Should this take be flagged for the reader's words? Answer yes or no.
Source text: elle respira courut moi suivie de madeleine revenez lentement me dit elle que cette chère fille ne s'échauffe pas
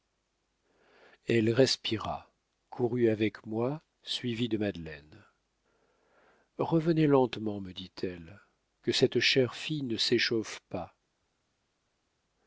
yes